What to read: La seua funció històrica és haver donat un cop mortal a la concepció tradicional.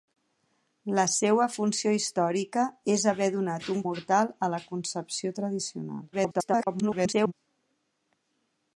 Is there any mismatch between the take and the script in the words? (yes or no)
yes